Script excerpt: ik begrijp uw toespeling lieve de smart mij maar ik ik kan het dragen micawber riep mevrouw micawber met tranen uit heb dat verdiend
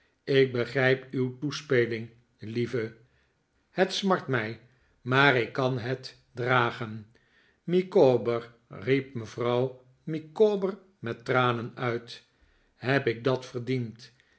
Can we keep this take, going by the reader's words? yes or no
no